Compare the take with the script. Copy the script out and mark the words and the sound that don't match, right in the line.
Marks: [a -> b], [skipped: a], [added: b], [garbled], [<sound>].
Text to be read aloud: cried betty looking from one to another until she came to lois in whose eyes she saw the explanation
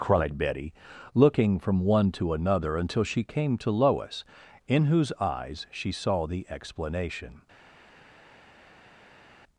cried betty looking from one to another until she came to lois in whose eyes she saw the explanation